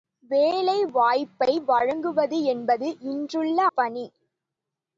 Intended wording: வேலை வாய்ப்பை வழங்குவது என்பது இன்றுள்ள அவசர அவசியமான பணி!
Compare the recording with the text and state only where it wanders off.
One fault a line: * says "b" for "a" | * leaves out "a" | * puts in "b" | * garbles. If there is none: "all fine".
* leaves out "அவசர அவசியமான"